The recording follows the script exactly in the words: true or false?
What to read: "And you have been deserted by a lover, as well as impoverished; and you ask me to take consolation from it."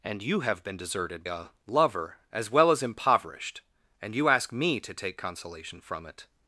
false